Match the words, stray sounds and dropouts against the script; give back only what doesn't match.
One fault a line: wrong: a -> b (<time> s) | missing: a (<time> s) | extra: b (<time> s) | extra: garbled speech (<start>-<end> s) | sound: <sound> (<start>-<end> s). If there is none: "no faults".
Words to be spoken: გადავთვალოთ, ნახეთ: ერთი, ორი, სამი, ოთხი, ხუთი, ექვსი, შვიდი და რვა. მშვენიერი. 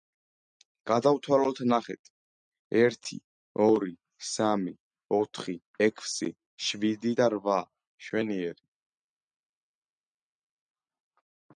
missing: ხუთი (5.5 s)